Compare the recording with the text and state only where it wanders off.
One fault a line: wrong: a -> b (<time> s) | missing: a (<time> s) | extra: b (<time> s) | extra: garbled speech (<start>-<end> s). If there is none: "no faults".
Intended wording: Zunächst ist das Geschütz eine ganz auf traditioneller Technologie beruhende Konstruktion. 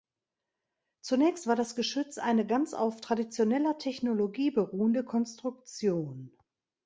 wrong: ist -> war (1.4 s)